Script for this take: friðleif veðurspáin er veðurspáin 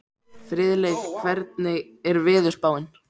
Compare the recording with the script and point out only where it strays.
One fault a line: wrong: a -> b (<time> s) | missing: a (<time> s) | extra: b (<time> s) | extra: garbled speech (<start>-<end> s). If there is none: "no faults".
wrong: veðurspáin -> hvernig (1.2 s)